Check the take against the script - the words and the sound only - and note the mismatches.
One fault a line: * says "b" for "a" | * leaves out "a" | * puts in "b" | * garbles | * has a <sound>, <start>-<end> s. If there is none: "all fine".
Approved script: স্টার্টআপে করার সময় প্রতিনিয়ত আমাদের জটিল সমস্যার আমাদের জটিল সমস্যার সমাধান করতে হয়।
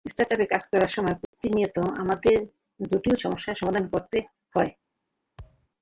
* puts in "কাজ"
* has a dropout, 1.2-1.3 s
* leaves out "আমাদের জটিল সমস্যার"
* has a thud, 5.4-5.7 s